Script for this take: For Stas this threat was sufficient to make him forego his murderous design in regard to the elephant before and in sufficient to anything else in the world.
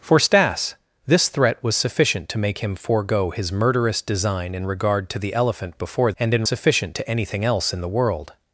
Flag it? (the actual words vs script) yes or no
no